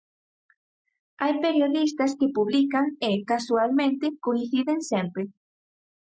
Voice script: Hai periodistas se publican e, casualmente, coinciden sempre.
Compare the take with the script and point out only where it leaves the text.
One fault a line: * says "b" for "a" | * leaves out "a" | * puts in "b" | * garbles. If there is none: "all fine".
* says "que" for "se"